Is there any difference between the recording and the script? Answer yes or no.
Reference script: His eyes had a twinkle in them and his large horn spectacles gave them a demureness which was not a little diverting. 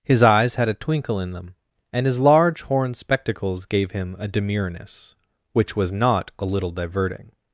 yes